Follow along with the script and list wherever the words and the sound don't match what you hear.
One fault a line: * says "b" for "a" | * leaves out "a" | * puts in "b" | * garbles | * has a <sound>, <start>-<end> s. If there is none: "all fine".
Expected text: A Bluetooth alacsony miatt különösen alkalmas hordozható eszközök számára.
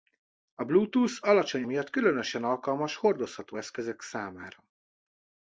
all fine